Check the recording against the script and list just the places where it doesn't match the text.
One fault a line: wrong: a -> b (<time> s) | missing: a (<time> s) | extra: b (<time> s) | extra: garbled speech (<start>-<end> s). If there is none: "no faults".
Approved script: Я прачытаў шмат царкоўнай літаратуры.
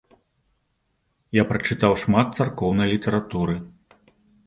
no faults